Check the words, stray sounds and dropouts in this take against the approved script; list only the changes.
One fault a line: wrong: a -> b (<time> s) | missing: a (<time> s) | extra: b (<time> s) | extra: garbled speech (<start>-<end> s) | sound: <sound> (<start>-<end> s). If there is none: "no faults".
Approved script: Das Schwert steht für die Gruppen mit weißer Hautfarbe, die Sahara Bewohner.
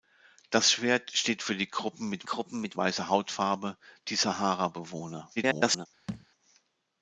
extra: Gruppen mit (2.2 s)
extra: garbled speech (5.4-5.9 s)
sound: thud (6.1-6.3 s)